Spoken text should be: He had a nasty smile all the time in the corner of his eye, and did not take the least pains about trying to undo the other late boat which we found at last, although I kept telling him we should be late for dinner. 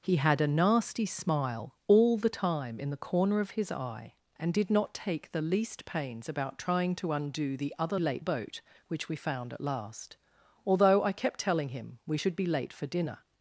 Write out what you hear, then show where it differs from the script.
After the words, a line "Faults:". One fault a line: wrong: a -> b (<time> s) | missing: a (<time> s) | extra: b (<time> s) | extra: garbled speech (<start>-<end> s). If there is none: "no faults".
He had a nasty smile all the time in the corner of his eye, and did not take the least pains about trying to undo the other late boat which we found at last, although I kept telling him we should be late for dinner.
Faults:
no faults